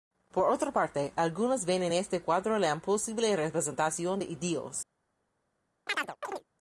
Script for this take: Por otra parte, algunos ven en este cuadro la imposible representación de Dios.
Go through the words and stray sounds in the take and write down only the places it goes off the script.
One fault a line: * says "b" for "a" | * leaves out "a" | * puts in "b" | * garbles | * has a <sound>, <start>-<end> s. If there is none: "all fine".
* has a chirp, 5.9-6.4 s